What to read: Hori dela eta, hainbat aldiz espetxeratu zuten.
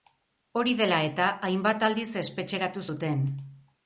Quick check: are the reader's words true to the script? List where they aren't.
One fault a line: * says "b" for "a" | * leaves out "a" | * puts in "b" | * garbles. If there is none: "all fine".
all fine